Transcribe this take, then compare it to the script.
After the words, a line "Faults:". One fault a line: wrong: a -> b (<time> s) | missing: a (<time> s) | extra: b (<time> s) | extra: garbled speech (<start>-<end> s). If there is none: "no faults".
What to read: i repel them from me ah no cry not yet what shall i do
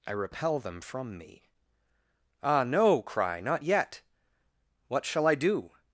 i repel them from me ah no cry not yet what shall i do
Faults:
no faults